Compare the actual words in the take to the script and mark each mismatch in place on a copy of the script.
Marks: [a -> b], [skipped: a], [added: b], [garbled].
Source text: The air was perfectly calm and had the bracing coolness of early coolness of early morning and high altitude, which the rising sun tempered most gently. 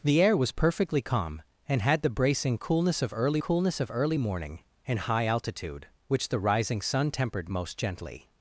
The air was perfectly calm and had the bracing coolness of early coolness of early morning and high altitude, which the rising sun tempered most gently.